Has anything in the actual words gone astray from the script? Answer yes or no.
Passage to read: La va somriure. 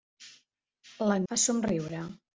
no